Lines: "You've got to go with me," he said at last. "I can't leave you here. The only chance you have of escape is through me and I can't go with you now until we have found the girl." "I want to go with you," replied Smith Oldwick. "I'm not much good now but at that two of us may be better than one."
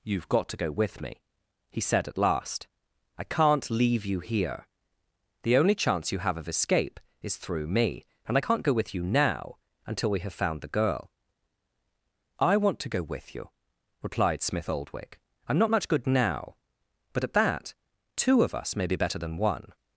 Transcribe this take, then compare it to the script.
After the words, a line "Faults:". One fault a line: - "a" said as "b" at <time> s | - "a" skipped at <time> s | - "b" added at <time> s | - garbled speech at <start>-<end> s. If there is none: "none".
"You've got to go with me," he said at last. "I can't leave you here. The only chance you have of escape is through me and I can't go with you now until we have found the girl." "I want to go with you," replied Smith Oldwick. "I'm not much good now but at that two of us may be better than one."
Faults:
none